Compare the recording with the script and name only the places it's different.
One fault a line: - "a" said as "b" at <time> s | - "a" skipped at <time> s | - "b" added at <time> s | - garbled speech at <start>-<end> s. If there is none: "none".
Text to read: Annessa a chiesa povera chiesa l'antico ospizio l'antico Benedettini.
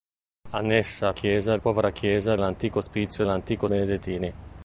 none